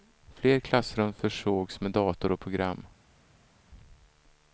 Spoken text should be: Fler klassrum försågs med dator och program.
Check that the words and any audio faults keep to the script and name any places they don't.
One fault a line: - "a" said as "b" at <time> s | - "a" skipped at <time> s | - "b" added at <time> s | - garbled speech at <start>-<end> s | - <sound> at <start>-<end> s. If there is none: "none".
none